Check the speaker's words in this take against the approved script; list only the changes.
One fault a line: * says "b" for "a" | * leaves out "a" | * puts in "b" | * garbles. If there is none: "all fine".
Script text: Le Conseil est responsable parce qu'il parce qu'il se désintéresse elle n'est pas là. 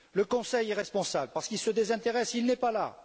* leaves out "parce qu'il"
* says "il" for "elle"